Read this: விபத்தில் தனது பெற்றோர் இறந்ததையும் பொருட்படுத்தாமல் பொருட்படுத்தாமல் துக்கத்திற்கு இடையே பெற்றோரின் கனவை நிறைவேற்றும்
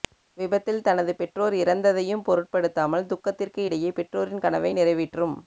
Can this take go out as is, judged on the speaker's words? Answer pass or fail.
fail